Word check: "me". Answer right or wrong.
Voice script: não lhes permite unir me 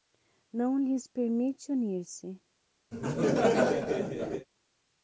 wrong